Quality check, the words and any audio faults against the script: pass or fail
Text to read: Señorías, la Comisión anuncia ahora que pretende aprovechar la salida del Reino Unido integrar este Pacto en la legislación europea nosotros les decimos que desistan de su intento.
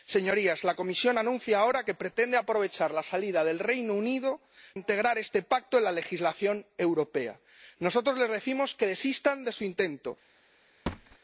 fail